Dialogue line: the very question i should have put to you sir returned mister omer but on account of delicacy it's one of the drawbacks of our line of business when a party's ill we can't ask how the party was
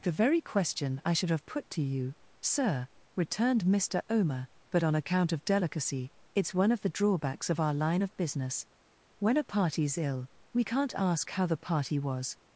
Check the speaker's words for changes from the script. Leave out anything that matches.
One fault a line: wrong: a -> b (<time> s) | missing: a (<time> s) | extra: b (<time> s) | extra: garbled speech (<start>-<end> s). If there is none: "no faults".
no faults